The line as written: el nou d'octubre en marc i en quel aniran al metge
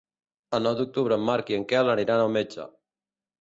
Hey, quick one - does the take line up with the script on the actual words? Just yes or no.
yes